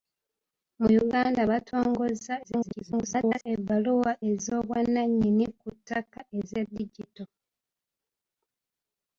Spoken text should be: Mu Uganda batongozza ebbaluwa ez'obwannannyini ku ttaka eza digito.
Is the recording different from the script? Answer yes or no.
yes